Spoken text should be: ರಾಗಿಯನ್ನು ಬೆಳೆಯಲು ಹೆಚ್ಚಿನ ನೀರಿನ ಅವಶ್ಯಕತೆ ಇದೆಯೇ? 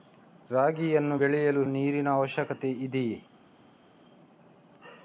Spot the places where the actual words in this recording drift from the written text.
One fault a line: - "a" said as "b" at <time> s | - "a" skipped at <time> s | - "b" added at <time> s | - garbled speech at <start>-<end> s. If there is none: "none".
- "ಹೆಚ್ಚಿನ" skipped at 1.6 s